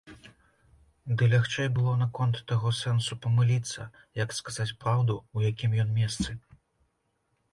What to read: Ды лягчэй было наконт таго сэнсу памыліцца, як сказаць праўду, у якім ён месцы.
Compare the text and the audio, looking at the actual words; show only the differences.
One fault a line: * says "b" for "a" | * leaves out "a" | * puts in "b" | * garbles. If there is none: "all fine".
all fine